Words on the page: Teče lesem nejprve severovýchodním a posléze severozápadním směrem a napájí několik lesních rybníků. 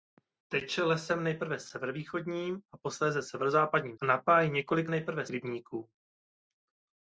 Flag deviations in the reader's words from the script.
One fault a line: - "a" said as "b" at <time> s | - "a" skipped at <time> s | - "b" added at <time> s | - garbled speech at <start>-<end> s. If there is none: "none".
- "směrem" skipped at 4.0 s
- "lesních" said as "nejprve" at 4.9 s